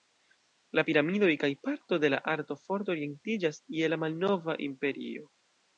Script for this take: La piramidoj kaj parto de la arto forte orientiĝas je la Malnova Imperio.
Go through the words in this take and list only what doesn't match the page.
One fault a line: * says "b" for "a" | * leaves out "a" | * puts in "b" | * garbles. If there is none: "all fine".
all fine